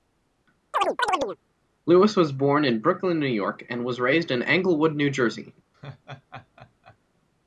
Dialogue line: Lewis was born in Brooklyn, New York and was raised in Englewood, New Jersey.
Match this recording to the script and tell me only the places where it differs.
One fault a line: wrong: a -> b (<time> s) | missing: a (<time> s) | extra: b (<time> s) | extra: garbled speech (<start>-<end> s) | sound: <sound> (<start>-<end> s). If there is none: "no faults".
sound: chirp (0.7-1.4 s)
sound: laugh (5.7-7.0 s)